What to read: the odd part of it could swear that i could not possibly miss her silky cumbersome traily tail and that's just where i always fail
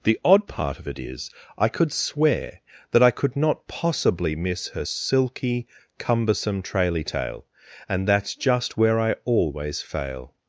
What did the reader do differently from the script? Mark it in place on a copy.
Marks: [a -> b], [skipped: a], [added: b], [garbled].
the odd part of it [added: is i] could swear that i could not possibly miss her silky cumbersome traily tail and that's just where i always fail